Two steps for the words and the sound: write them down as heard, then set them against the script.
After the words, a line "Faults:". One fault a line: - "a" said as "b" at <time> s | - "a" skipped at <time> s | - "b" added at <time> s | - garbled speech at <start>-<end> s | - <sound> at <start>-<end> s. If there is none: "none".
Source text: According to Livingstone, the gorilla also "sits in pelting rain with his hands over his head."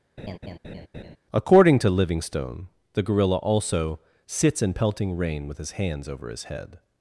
According to Livingstone, the gorilla also "sits in pelting rain with his hands over his head."
Faults:
- laugh at 0.2-1.2 s